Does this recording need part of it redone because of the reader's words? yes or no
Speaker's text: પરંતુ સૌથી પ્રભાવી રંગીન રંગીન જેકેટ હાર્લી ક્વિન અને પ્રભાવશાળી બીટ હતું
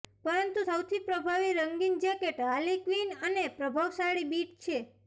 yes